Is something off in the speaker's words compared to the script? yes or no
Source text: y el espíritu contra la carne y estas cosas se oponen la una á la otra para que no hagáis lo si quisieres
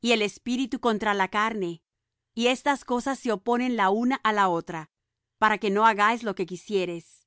yes